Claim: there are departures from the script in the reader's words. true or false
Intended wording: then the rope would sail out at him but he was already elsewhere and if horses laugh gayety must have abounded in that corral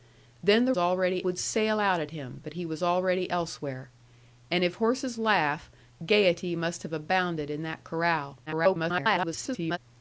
true